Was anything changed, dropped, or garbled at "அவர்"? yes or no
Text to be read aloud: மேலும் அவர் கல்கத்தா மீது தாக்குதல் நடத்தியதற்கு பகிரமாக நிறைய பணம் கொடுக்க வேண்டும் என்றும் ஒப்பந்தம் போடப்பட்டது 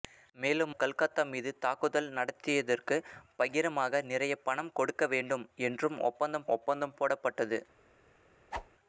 yes